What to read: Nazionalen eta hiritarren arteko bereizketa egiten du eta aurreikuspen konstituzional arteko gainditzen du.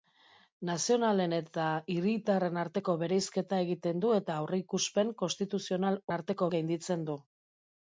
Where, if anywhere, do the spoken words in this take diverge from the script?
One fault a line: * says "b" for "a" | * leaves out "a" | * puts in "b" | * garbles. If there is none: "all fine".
all fine